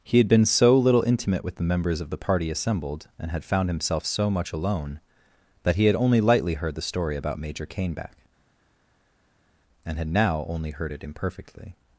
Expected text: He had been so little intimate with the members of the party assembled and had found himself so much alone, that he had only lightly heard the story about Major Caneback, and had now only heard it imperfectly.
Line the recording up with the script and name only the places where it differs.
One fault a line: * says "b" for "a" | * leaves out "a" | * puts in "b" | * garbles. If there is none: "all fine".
all fine